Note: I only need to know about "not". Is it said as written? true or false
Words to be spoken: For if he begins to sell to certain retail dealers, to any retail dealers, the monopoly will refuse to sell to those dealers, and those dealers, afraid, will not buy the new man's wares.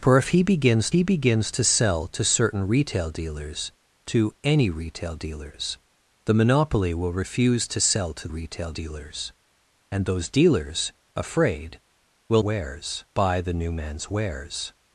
false